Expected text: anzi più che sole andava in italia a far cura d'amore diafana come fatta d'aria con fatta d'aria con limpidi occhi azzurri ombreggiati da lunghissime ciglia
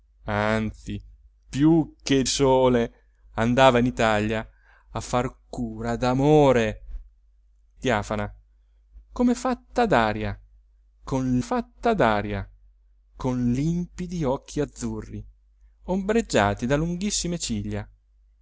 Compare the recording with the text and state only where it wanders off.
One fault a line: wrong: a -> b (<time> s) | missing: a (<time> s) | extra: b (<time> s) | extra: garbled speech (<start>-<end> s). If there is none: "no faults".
no faults